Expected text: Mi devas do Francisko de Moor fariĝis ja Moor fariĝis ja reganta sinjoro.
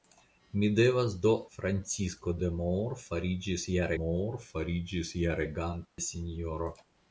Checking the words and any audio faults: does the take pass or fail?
fail